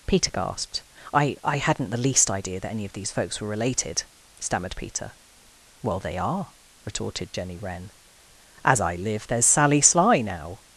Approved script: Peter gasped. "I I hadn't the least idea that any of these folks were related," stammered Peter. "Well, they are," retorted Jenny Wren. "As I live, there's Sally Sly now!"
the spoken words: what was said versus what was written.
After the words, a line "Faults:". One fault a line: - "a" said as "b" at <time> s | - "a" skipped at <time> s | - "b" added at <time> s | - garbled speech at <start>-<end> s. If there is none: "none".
Peter gasped. "I I hadn't the least idea that any of these folks were related," stammered Peter. "Well, they are," retorted Jenny Wren. "As I live, there's Sally Sly now!"
Faults:
none